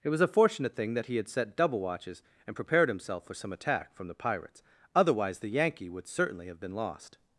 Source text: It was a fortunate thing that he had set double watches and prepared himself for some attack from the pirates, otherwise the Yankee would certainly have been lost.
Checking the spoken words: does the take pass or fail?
pass